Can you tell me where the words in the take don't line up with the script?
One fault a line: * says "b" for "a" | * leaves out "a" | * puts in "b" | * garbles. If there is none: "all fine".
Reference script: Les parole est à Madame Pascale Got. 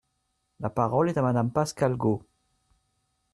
* says "La" for "Les"